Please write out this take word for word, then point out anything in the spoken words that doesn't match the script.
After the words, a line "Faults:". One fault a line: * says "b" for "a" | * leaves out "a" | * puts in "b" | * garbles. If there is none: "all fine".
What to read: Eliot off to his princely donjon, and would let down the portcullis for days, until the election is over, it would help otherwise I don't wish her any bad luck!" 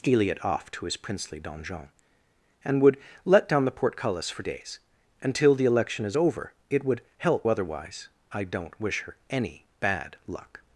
Eliot off to his princely donjon, and would let down the portcullis for days, until the election is over, it would help otherwise I don't wish her any bad luck!"
Faults:
all fine